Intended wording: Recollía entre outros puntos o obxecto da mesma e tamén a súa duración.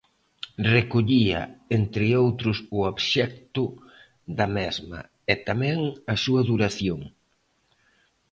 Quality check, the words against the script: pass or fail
fail